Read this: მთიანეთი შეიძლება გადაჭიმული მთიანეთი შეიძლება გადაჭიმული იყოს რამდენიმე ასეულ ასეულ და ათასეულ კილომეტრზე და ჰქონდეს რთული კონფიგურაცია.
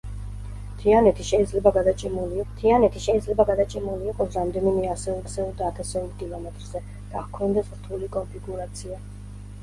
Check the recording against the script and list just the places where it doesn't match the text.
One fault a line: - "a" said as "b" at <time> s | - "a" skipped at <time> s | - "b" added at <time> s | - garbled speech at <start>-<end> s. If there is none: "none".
none